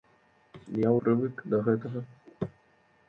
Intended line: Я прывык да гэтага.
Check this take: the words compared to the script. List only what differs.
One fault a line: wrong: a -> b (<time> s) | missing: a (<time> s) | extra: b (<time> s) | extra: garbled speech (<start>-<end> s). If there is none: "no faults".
no faults